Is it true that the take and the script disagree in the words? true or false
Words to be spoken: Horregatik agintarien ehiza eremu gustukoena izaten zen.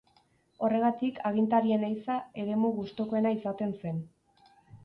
false